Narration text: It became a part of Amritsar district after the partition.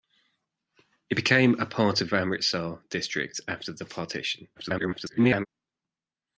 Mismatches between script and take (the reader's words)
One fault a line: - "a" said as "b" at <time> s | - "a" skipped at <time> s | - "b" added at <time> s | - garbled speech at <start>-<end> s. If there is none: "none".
- garbled speech at 4.5-5.5 s